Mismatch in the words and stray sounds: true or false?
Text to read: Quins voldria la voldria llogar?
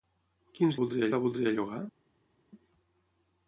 false